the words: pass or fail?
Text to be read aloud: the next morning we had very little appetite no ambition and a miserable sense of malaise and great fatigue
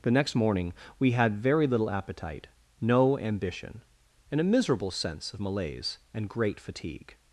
pass